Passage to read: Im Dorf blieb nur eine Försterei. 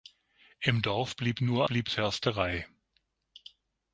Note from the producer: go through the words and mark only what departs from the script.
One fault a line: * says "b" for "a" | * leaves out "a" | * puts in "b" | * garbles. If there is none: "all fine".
* says "blieb" for "eine"